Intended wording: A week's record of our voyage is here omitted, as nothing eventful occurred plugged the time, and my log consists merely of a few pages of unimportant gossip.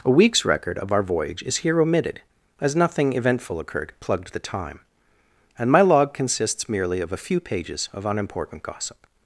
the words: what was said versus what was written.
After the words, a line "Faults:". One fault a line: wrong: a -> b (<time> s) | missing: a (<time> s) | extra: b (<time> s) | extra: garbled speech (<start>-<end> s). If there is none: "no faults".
A week's record of our voyage is here omitted, as nothing eventful occurred plugged the time, and my log consists merely of a few pages of unimportant gossip.
Faults:
no faults